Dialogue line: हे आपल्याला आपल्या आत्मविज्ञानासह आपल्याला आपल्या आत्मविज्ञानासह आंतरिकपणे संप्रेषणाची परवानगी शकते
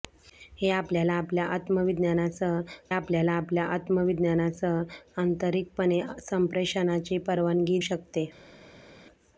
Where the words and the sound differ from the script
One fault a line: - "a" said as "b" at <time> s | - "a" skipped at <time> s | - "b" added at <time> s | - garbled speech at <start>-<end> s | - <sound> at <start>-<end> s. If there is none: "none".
none